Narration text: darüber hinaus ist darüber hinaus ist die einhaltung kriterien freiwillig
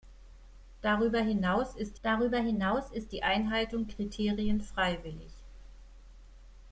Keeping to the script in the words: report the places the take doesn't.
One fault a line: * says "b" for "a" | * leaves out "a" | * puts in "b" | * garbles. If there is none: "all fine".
all fine